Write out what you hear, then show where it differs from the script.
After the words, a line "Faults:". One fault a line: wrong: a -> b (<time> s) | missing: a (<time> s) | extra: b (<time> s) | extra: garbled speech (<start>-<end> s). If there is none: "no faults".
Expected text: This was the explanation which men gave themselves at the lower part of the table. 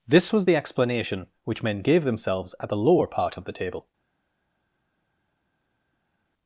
This was the explanation which men gave themselves at the lower part of the table.
Faults:
no faults